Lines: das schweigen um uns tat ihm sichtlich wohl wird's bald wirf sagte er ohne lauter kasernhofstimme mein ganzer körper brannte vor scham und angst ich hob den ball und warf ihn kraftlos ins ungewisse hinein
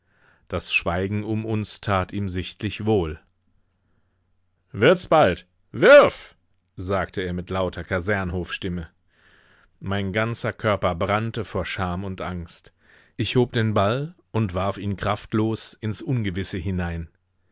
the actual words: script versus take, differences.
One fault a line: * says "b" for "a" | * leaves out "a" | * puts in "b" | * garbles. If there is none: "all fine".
* says "mit" for "ohne"